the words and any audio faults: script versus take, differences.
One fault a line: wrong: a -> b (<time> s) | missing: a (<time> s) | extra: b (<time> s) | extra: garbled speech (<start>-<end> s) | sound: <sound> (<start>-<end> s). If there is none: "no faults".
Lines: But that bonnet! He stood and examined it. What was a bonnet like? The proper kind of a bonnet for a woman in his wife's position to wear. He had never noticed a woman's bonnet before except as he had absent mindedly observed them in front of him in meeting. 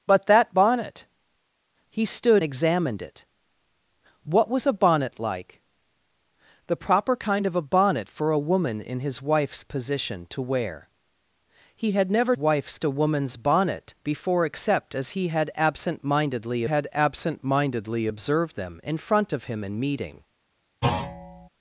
missing: and (2.4 s)
wrong: noticed -> wife's (12.3 s)
extra: had absent mindedly (16.6 s)
sound: thud (20.8-21.5 s)